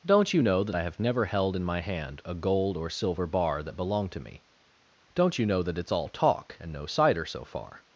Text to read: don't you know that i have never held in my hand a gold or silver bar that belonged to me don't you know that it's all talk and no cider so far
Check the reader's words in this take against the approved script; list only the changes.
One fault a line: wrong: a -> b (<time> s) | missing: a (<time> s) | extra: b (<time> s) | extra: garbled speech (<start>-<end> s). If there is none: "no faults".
no faults